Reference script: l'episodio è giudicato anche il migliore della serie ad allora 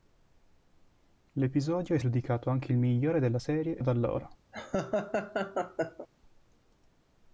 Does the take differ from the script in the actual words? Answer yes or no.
no